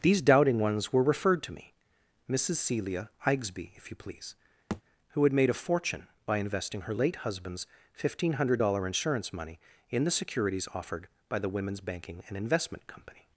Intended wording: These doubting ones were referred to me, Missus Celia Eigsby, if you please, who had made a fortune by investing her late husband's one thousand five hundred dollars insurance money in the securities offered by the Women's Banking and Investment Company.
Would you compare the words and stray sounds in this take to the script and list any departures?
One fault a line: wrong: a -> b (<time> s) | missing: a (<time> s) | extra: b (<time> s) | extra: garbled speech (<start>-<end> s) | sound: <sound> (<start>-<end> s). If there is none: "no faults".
sound: thud (4.7-4.8 s)